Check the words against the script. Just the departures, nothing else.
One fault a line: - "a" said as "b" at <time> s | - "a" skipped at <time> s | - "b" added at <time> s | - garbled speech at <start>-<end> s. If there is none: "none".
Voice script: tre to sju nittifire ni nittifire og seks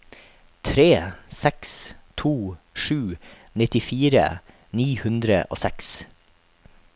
- "seks" added at 1.4 s
- "nittifire" said as "hundre" at 5.0 s